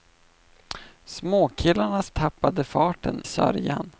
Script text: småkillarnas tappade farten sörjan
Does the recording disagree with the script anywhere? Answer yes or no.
no